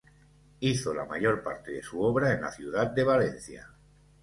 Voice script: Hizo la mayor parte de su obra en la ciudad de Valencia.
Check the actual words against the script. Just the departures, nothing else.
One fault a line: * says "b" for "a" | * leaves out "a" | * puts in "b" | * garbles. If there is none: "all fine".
all fine